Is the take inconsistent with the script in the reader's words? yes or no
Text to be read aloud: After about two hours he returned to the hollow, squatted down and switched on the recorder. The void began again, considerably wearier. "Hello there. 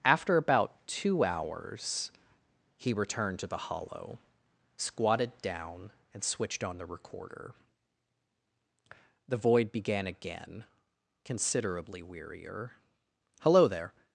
no